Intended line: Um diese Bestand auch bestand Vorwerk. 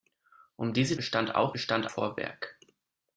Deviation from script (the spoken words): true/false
false